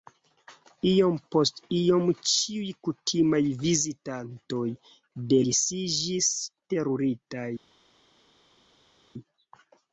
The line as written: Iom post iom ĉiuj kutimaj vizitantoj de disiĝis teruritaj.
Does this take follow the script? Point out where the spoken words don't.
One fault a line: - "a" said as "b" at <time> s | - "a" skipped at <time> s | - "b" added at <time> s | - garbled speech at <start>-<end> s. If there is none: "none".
none